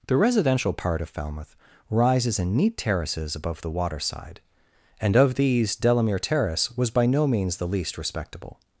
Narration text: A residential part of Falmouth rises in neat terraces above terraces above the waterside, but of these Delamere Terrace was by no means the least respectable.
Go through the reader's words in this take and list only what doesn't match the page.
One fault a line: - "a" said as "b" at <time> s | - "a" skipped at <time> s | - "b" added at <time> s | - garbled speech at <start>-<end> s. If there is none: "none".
- "A" said as "The" at 0.1 s
- "terraces above" skipped at 3.6 s
- "but" said as "and" at 5.0 s